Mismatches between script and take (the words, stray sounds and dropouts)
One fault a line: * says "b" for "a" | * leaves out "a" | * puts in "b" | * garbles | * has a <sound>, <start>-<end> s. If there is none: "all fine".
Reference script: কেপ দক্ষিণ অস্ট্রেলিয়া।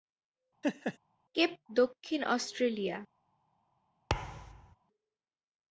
* has a laugh, 0.6-1.0 s
* has a thud, 4.1-4.8 s